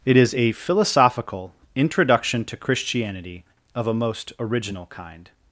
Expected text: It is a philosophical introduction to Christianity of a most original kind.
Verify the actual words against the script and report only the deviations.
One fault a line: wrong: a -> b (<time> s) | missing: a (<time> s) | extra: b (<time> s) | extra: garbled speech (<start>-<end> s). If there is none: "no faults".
no faults